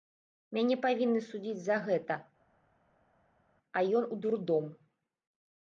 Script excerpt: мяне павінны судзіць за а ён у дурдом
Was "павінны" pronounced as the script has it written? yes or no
yes